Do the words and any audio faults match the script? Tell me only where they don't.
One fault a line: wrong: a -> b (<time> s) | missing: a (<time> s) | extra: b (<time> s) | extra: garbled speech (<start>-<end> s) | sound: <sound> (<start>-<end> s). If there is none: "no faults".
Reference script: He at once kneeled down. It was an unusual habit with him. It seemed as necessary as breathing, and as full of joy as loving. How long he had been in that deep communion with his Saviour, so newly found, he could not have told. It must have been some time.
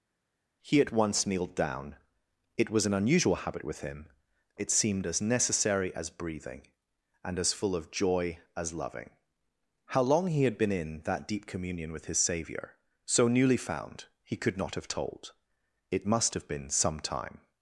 no faults